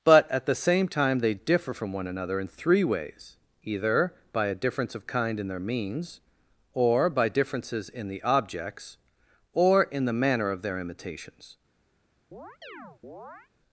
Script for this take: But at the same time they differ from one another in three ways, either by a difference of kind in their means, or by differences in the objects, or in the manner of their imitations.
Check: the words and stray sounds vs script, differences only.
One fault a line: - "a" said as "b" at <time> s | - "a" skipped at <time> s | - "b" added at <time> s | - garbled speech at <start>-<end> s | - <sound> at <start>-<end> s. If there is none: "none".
- chirp at 12.3-13.5 s